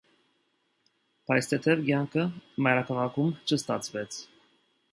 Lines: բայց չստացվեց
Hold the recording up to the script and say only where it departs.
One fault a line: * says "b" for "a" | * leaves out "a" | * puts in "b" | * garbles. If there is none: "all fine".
* puts in "թեթև կյանքը մայրաքաղաքում"